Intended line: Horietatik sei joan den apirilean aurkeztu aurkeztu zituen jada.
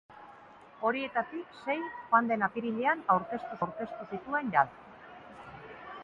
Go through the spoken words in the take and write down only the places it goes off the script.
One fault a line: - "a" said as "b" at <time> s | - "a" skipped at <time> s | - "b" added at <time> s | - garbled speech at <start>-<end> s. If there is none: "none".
none